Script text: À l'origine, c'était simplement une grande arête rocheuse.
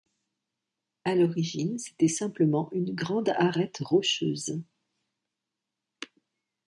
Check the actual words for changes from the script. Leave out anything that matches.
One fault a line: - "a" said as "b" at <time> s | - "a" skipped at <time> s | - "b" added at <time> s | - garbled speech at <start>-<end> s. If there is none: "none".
none